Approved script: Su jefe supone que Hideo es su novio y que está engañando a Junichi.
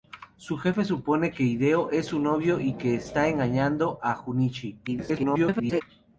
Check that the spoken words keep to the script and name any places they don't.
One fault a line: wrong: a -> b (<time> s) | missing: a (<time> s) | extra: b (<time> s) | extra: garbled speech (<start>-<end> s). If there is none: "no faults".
extra: garbled speech (4.9-5.8 s)